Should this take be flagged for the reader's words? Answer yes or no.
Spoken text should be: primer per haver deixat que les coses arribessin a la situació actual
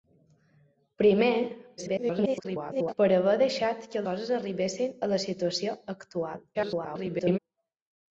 yes